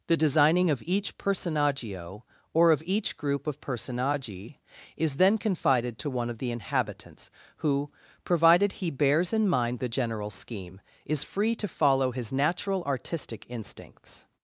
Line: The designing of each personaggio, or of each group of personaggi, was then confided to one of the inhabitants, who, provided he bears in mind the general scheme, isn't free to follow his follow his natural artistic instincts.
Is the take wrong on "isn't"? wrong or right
wrong